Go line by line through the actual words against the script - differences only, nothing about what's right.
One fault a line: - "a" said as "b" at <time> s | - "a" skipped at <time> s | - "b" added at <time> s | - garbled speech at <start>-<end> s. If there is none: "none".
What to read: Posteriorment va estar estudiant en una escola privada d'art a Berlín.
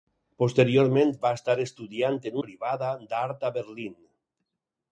- "una escola" skipped at 2.4 s